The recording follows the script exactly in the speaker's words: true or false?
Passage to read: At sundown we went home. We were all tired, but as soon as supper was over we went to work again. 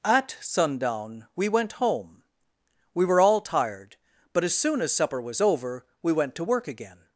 true